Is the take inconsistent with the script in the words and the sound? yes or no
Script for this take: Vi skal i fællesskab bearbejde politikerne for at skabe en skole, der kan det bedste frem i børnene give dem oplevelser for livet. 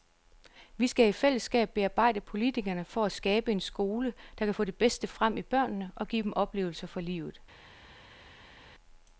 yes